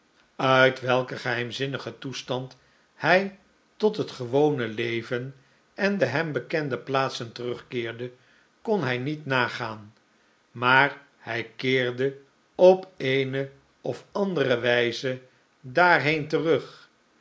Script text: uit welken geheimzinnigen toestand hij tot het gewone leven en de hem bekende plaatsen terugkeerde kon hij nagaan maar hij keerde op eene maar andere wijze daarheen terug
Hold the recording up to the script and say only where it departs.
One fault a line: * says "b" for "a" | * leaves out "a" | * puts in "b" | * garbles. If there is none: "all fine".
* puts in "niet"
* says "of" for "maar"